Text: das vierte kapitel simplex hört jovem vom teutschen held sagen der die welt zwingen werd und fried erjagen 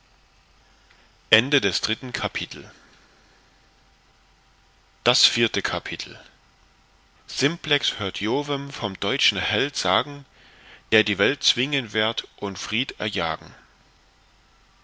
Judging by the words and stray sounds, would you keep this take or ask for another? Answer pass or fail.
pass